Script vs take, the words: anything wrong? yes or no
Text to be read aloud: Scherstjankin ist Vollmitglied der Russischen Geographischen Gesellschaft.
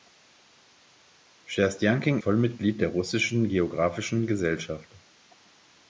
yes